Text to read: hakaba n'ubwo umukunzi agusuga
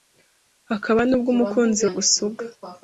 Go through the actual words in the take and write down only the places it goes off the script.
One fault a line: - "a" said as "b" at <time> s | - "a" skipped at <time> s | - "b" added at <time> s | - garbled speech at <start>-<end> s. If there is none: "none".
none